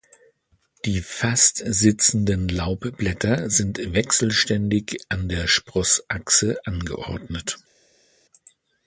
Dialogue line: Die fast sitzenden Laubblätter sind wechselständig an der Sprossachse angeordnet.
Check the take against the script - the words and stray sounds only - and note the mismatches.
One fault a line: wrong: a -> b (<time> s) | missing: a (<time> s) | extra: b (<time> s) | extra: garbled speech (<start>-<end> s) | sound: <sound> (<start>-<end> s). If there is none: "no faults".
no faults